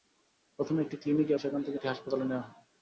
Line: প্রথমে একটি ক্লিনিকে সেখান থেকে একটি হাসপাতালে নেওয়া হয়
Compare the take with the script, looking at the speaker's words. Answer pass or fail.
pass